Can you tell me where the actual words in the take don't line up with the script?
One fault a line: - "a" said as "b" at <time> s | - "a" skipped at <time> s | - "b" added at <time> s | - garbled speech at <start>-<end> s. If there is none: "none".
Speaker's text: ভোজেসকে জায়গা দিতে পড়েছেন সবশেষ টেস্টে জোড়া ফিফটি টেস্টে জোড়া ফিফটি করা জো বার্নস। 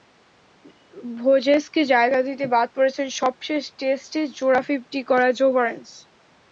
- "বাদ" added at 2.5 s
- "টেস্টে জোড়া ফিফটি" skipped at 5.0 s